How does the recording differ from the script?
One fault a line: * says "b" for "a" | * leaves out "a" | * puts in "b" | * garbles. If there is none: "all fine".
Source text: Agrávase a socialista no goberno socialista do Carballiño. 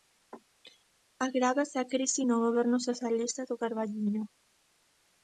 * says "crise" for "socialista"